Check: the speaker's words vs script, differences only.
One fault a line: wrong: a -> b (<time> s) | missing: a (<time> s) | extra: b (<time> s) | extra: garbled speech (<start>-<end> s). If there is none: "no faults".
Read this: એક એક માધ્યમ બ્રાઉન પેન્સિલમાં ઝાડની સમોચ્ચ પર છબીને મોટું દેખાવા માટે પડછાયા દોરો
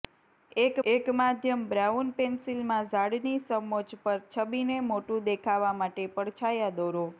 no faults